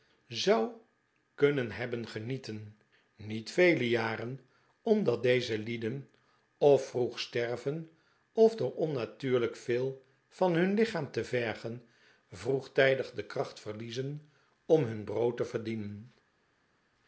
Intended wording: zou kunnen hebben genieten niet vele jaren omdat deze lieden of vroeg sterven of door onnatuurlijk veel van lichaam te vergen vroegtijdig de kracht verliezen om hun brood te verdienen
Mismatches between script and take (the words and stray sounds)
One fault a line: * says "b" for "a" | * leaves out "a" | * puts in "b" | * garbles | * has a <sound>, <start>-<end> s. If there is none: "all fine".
* puts in "hun"